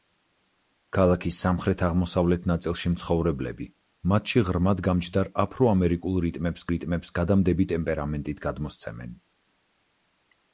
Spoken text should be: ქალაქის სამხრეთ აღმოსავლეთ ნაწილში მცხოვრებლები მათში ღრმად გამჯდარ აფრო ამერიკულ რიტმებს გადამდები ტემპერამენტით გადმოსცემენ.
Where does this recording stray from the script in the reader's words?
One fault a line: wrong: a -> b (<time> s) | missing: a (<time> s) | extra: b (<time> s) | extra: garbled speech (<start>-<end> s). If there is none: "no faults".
extra: რიტმებს (6.7 s)